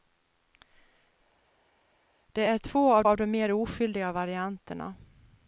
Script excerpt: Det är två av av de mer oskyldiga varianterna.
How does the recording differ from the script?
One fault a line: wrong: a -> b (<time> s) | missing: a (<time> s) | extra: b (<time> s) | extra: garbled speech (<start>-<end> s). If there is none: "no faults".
no faults